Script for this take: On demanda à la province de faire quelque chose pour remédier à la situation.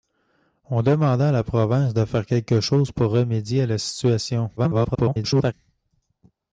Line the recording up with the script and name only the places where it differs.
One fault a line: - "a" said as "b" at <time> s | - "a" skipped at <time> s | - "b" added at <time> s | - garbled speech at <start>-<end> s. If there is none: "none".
- garbled speech at 4.6-5.5 s